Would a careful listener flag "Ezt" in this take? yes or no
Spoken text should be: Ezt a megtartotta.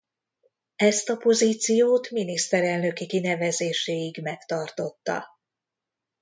no